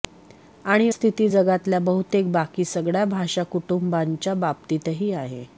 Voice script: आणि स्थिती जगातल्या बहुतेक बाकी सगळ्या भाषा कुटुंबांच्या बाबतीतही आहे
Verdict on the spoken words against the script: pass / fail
pass